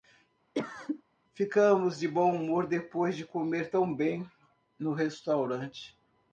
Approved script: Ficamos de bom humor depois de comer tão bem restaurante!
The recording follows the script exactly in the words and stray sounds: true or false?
false